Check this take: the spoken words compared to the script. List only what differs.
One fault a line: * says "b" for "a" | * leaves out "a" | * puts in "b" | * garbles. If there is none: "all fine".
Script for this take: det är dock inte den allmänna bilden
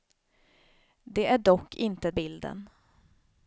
* leaves out "den allmänna"